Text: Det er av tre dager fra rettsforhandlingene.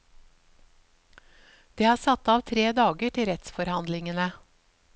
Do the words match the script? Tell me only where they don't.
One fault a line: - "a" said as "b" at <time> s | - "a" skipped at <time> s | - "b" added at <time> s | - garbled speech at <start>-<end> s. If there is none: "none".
- "satt" added at 2.0 s
- "fra" said as "til" at 3.2 s